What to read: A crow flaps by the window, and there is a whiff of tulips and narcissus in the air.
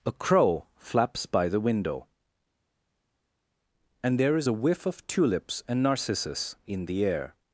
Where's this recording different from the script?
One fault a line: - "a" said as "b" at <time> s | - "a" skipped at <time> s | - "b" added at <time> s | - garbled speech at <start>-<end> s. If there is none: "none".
none